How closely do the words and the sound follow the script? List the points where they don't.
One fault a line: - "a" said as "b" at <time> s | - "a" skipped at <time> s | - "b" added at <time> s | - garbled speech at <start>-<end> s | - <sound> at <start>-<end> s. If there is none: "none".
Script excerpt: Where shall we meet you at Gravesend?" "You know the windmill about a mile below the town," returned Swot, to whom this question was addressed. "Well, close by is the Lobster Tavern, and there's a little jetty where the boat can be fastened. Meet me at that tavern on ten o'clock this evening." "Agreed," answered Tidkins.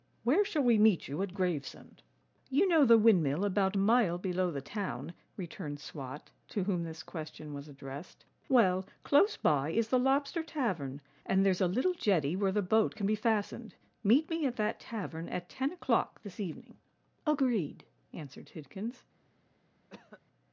- "on" said as "at" at 15.3 s
- cough at 19.9-20.2 s